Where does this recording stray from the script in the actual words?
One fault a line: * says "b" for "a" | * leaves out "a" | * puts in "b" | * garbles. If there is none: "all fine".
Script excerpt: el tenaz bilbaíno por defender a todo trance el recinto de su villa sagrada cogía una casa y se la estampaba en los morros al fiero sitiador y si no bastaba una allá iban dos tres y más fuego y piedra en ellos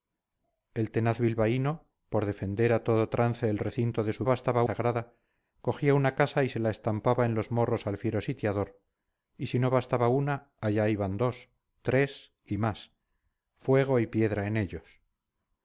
* says "bastaba" for "villa"